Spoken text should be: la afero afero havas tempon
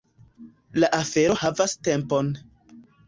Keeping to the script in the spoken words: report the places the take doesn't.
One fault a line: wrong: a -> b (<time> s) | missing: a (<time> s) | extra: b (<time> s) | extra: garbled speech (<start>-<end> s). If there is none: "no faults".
missing: afero (1.4 s)